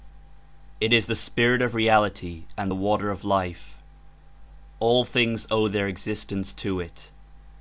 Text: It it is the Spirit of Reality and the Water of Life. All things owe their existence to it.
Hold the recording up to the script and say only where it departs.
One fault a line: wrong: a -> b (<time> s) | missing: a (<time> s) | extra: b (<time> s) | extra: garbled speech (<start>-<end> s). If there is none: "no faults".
missing: it (0.9 s)